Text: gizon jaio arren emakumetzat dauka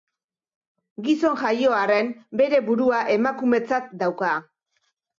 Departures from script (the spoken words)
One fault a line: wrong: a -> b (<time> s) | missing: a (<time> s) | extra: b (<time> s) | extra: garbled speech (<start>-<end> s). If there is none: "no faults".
extra: bere burua (2.4 s)